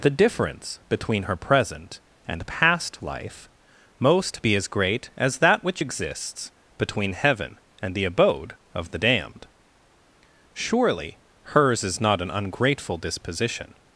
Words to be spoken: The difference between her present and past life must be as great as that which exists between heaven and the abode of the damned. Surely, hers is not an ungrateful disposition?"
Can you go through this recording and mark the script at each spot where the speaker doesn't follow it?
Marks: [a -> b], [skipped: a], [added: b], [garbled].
The difference between her present and past life [must -> most] be as great as that which exists between heaven and the abode of the damned. Surely, hers is not an ungrateful disposition?"